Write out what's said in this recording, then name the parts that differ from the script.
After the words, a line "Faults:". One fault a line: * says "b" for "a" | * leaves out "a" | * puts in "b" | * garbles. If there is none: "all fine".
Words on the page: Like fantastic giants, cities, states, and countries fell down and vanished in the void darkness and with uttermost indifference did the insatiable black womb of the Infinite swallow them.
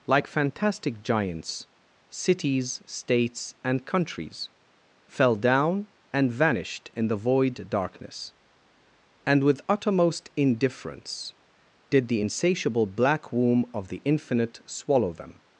Like fantastic giants, cities, states, and countries fell down and vanished in the void darkness and with uttermost indifference did the insatiable black womb of the Infinite swallow them.
Faults:
all fine